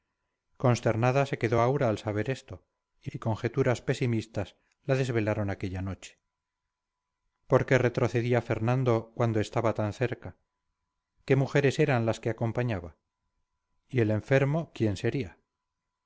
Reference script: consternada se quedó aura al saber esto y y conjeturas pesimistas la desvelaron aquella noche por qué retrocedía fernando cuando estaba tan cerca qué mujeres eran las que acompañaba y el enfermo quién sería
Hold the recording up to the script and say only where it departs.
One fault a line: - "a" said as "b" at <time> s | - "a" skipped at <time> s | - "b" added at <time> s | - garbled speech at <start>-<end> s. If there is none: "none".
none